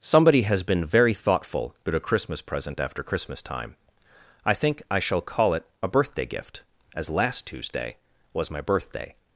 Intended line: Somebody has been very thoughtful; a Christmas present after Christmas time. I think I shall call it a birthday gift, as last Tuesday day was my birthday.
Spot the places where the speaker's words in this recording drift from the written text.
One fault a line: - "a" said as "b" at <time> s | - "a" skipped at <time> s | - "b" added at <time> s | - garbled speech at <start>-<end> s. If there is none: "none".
- "about" added at 1.9 s
- "day" skipped at 8.0 s